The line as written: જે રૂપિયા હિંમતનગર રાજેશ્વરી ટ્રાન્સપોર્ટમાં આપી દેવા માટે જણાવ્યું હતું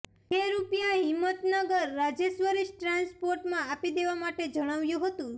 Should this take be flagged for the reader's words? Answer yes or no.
no